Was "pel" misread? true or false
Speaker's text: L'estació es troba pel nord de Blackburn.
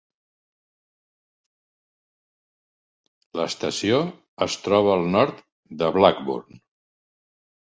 true